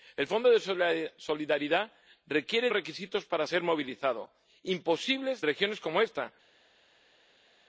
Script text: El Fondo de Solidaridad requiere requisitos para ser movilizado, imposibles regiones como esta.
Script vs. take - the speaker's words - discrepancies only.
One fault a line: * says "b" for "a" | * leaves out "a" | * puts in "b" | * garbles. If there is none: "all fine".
all fine